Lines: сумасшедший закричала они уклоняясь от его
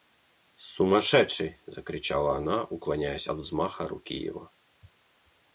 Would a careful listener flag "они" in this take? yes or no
yes